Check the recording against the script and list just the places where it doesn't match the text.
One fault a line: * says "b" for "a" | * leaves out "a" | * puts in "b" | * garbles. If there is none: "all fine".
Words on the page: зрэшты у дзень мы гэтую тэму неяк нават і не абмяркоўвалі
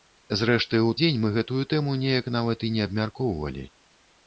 all fine